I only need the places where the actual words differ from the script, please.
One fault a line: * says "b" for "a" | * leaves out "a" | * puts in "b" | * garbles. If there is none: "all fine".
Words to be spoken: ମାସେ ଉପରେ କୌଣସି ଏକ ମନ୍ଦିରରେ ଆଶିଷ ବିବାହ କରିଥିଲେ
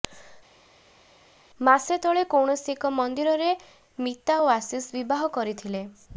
* says "ତଳେ" for "ଉପରେ"
* puts in "ମିତା ଓ"